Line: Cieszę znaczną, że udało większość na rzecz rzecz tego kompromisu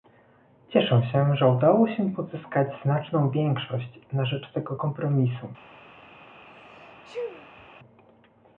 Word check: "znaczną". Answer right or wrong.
wrong